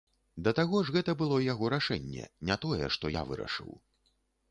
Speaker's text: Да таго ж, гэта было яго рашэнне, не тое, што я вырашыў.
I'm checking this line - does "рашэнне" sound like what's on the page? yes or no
yes